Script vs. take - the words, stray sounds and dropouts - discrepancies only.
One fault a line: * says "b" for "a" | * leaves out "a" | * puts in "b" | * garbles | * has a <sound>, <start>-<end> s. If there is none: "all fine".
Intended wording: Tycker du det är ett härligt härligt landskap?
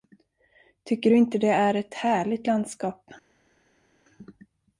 * puts in "inte"
* leaves out "härligt"